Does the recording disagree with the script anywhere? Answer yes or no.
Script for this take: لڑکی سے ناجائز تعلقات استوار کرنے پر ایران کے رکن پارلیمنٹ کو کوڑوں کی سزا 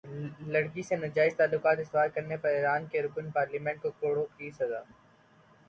no